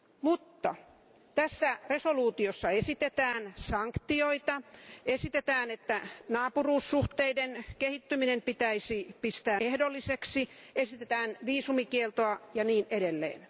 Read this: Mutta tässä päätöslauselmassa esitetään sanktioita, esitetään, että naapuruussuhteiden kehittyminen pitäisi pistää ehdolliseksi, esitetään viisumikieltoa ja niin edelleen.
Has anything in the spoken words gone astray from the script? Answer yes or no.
no